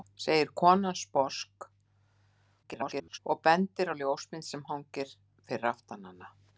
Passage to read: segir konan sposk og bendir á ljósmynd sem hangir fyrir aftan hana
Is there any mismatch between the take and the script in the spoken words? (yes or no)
yes